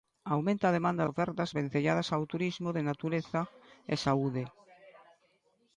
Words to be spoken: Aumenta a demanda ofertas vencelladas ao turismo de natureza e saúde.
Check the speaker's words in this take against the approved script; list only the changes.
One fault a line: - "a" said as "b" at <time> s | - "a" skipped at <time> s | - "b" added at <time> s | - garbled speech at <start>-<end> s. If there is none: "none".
none